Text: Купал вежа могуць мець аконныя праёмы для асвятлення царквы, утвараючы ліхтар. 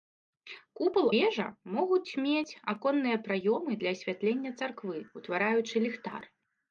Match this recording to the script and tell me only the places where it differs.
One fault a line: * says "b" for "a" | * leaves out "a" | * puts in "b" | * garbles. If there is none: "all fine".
all fine